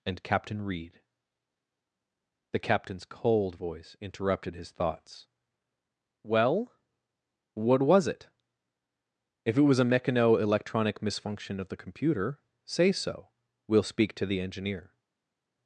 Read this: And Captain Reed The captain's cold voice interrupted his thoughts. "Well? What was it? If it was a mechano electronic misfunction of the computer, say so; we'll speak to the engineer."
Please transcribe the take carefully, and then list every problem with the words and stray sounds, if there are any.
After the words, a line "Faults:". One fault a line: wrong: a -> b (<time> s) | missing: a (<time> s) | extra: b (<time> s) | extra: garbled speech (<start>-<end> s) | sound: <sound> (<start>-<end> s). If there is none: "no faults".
And Captain Reed The captain's cold voice interrupted his thoughts. "Well? What was it? If it was a mechano electronic misfunction of the computer, say so; we'll speak to the engineer."
Faults:
no faults